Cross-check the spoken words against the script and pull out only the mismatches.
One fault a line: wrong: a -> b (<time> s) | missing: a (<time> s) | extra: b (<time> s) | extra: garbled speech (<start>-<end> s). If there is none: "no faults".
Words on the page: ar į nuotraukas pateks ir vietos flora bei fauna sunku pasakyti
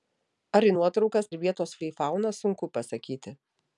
missing: pateks (1.3 s)
missing: flora (1.8 s)